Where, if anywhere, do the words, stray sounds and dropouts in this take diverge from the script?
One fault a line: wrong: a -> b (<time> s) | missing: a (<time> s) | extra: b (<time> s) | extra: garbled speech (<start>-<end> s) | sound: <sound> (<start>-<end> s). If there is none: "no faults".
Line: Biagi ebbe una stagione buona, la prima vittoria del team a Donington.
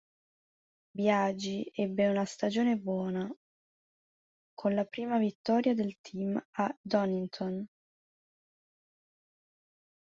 extra: con (4.5 s)